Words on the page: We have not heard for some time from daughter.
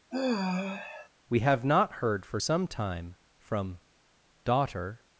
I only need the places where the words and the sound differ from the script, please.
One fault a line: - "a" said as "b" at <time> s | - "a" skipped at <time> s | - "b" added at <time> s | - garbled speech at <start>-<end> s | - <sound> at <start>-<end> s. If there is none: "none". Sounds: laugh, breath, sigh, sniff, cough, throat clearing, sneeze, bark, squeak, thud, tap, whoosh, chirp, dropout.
- sigh at 0.1-1.1 s